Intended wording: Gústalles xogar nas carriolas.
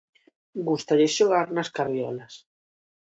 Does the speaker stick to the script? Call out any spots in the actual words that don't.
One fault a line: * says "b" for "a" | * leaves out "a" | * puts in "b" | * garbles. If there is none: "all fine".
all fine